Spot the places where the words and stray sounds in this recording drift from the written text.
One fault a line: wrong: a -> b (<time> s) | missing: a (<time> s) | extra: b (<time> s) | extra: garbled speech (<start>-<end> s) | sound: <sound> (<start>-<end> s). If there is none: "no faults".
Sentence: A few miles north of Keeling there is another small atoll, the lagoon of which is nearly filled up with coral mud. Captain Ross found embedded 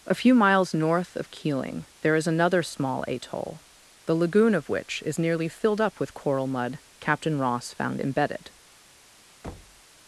sound: thud (9.4-9.8 s)